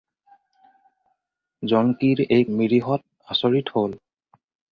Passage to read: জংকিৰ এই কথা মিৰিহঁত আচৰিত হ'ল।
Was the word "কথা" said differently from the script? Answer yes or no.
yes